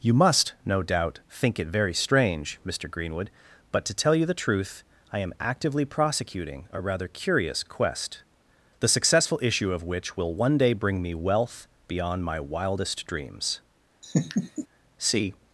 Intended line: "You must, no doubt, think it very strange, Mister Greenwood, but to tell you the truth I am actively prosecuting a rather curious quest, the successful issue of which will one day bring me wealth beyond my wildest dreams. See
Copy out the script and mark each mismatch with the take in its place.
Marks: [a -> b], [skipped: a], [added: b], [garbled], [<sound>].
"You must, no doubt, think it very strange, Mister Greenwood, but to tell you the truth I am actively prosecuting a rather curious quest, the successful issue of which will one day bring me wealth beyond my wildest dreams. [laugh] See